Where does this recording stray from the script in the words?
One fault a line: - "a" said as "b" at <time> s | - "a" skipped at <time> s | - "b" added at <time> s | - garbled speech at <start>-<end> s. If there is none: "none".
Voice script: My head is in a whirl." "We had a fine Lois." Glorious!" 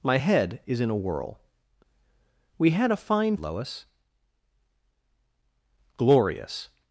none